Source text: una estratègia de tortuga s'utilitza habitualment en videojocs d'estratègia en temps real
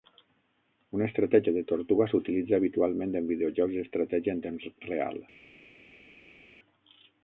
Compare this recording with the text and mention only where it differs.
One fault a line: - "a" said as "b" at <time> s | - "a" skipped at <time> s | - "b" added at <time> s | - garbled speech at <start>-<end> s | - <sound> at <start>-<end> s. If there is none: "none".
none